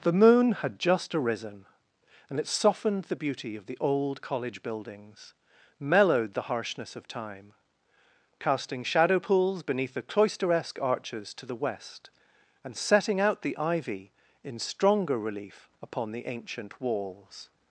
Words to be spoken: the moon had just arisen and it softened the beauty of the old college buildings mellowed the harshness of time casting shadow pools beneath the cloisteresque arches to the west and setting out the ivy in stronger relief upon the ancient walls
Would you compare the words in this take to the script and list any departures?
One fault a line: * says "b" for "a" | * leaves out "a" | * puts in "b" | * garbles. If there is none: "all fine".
all fine